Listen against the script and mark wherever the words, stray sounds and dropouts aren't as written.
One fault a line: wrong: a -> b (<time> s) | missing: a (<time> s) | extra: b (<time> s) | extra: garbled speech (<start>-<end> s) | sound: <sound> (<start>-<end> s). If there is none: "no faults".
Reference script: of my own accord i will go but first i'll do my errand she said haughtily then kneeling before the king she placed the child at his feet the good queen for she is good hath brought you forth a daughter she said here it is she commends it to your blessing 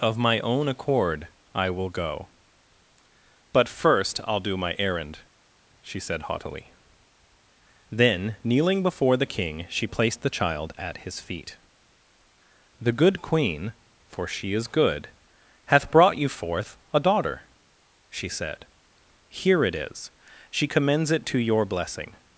no faults